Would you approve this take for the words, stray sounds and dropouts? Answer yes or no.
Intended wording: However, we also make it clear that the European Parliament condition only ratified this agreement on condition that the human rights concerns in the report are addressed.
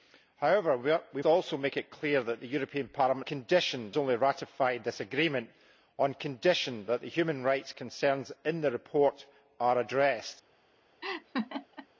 no